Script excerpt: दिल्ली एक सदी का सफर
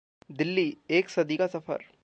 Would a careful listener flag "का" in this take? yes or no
no